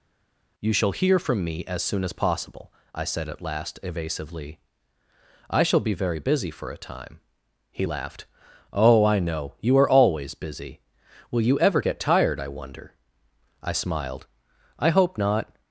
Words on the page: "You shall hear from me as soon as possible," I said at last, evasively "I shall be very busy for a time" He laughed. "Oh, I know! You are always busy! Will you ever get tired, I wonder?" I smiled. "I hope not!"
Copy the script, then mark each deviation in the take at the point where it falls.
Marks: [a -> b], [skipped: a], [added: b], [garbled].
"You shall hear from me as soon as possible," I said at last, evasively "I shall be very busy for a time" He laughed. "Oh, I know! You are always busy! Will you ever get tired, I wonder?" I smiled. "I hope not!"